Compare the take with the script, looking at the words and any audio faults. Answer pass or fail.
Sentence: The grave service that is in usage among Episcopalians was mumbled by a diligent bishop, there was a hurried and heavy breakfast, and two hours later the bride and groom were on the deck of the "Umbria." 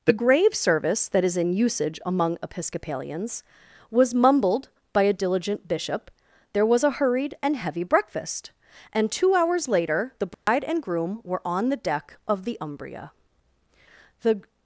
fail